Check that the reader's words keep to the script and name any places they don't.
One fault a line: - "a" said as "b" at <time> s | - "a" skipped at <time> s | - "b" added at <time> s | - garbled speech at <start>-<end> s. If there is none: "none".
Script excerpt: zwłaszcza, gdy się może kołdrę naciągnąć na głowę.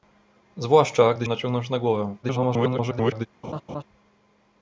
- "się może kołdrę" skipped at 1.3 s
- garbled speech at 2.2-3.3 s